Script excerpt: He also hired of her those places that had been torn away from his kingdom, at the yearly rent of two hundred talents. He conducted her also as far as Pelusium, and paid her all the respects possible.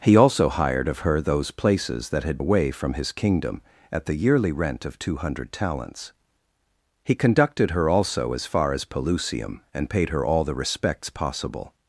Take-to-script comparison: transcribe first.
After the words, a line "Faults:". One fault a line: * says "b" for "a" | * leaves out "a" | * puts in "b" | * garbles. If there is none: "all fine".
He also hired of her those places that had away from his kingdom, at the yearly rent of two hundred talents. He conducted her also as far as Pelusium, and paid her all the respects possible.
Faults:
* leaves out "been torn"